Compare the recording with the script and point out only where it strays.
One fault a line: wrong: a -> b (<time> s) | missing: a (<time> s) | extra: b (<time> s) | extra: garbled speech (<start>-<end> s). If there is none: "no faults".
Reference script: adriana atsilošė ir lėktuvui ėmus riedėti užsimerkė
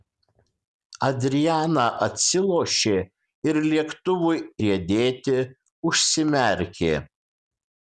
missing: ėmus (4.4 s)